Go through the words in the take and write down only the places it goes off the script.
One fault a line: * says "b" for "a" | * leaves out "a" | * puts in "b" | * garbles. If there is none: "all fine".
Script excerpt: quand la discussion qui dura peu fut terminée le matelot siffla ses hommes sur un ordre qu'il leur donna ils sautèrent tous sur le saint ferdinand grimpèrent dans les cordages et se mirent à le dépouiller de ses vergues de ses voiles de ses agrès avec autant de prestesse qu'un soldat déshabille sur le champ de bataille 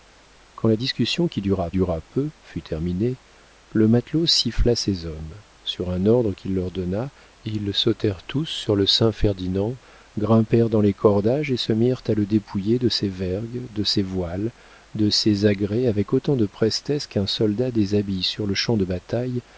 * puts in "dura"